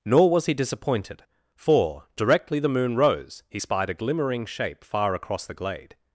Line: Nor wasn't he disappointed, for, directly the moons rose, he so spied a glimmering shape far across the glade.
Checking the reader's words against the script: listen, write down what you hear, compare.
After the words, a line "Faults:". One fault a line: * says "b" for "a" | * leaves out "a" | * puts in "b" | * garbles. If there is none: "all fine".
Nor was he disappointed, for, directly the moon rose, he spied a glimmering shape far across the glade.
Faults:
* says "was" for "wasn't"
* says "moon" for "moons"
* leaves out "so"